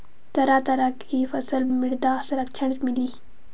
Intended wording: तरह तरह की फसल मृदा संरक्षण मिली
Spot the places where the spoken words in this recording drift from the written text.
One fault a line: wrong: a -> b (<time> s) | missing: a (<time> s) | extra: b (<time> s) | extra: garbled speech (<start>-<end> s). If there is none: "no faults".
no faults